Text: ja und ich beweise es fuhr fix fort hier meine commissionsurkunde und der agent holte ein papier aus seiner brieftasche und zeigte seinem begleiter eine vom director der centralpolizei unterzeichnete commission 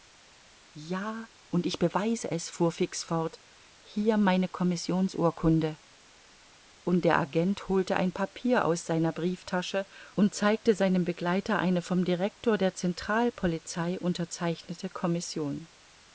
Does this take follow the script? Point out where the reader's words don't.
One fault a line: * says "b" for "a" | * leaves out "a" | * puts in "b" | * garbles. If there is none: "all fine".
all fine